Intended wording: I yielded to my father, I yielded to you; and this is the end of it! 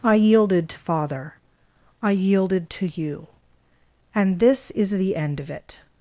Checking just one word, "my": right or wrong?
wrong